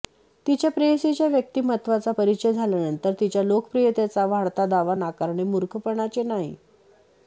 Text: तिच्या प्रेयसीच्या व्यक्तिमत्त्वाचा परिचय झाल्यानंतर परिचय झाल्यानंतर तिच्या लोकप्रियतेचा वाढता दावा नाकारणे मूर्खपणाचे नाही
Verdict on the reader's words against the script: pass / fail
fail